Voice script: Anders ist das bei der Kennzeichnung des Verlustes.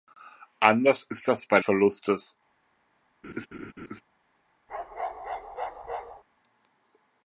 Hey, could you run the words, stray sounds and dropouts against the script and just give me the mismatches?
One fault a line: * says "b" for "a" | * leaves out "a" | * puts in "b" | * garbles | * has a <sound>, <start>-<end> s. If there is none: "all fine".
* leaves out "der Kennzeichnung des"
* has a laugh, 3.2-4.0 s
* has a bark, 4.7-6.2 s